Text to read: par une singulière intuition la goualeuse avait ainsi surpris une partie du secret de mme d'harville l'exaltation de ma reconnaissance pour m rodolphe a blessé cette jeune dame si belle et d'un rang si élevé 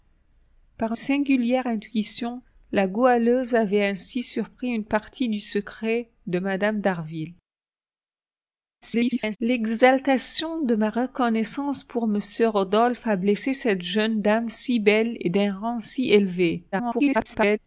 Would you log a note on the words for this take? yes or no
yes